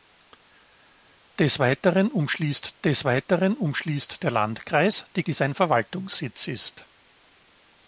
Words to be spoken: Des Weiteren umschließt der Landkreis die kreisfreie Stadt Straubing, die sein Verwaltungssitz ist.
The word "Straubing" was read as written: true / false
false